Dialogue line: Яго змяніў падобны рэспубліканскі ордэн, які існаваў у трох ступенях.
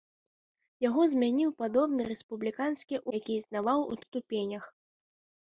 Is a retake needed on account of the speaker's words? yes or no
yes